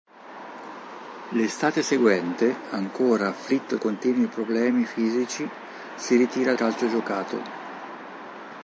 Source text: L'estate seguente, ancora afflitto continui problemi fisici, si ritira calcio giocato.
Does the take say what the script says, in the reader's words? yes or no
yes